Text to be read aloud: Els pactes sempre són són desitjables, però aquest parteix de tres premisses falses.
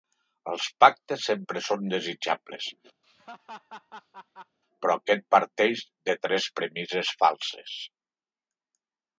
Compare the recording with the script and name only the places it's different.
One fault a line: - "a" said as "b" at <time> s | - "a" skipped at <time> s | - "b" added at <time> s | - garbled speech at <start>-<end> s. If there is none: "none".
- "són" skipped at 1.8 s